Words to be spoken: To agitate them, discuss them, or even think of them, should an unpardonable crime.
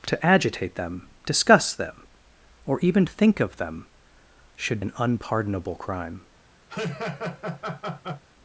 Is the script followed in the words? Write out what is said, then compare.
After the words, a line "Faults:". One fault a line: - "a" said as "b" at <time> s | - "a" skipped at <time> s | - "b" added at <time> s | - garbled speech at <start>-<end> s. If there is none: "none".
To agitate them, discuss them, or even think of them, should an unpardonable crime.
Faults:
none